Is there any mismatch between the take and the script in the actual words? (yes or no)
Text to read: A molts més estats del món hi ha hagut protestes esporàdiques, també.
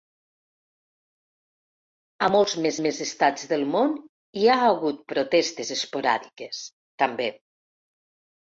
yes